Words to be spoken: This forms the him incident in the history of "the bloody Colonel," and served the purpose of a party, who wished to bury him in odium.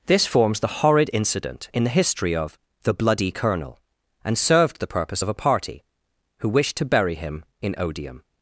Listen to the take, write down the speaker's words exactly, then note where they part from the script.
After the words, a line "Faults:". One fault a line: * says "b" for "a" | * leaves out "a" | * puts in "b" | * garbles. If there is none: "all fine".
This forms the horrid incident in the history of "the bloody Colonel," and served the purpose of a party, who wished to bury him in odium.
Faults:
* says "horrid" for "him"